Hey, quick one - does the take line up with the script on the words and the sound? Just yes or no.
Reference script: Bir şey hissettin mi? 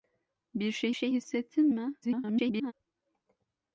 no